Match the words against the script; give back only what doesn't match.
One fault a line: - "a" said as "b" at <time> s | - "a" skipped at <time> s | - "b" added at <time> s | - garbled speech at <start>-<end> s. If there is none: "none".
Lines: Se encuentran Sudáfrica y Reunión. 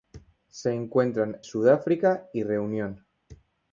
none